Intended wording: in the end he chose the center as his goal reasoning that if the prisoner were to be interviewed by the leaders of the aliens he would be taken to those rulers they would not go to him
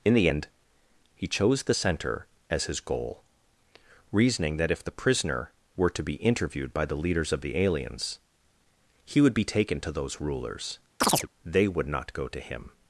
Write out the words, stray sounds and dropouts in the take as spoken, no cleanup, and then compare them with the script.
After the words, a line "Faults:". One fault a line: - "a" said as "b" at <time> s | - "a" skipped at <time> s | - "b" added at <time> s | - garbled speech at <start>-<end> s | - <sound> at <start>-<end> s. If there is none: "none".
in the end he chose the center as his goal reasoning that if the prisoner were to be interviewed by the leaders of the aliens he would be taken to those rulers they would not go to him
Faults:
- chirp at 11.0-11.3 s